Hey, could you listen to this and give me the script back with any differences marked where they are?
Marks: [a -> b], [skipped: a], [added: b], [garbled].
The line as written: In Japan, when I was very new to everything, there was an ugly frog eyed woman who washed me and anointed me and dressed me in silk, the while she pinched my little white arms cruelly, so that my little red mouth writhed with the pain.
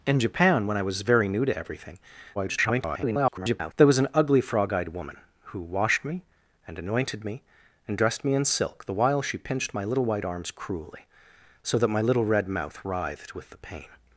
In Japan, when I was very new to everything, [garbled] there was an ugly frog eyed woman who washed me and anointed me and dressed me in silk, the while she pinched my little white arms cruelly, so that my little red mouth writhed with the pain.